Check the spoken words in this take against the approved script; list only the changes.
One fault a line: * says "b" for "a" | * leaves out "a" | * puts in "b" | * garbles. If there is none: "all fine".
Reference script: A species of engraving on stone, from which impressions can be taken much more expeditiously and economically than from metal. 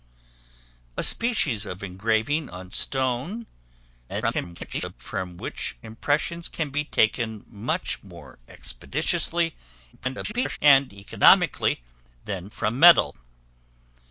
* garbles
* garbles